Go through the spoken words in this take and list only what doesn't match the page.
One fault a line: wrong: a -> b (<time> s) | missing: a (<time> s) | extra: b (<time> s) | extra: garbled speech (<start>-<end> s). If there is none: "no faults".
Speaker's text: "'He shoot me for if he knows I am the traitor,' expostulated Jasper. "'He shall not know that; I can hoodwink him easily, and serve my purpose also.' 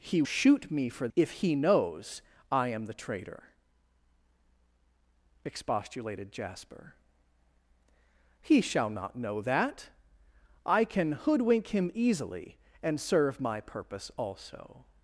no faults